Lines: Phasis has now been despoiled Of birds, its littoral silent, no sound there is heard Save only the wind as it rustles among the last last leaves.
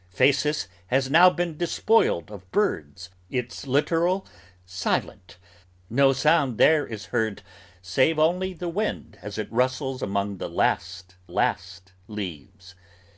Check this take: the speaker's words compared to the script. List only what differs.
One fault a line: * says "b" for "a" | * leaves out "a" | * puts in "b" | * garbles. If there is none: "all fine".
all fine